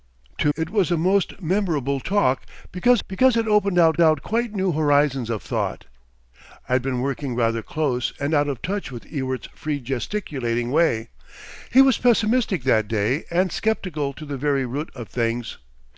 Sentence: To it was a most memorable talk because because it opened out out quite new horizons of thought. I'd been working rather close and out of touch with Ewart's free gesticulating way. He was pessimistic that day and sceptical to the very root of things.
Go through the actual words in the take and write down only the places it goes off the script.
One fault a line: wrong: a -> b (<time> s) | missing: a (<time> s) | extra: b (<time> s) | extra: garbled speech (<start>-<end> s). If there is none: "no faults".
no faults